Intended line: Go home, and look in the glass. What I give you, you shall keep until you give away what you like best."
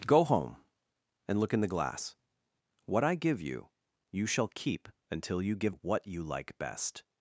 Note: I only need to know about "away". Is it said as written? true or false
false